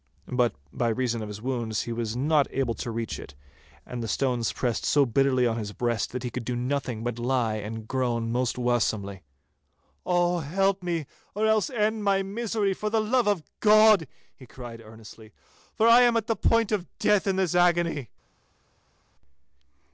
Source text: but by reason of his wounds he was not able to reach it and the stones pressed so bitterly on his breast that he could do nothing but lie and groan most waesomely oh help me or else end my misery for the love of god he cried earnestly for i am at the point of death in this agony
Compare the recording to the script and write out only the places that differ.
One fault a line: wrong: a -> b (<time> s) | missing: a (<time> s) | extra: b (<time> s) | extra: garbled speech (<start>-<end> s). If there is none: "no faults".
no faults